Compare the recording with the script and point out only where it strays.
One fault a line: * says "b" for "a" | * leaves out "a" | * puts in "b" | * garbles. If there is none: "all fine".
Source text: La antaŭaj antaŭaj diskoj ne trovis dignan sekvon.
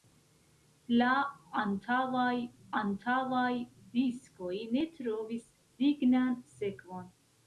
all fine